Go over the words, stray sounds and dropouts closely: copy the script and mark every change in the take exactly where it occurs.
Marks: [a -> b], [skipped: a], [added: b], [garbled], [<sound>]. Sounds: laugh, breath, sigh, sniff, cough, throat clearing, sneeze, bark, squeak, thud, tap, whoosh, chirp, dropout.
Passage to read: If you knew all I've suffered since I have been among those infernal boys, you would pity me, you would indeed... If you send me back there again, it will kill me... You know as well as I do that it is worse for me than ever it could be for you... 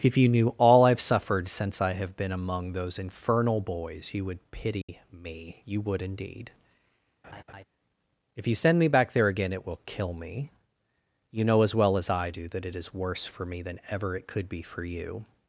If you knew all I've suffered since I have been among those infernal boys, you would pity [dropout] me, you would indeed... [laugh] If you send me back there again, it will kill me... You know as well as I do that it is worse for me than ever it could be for you...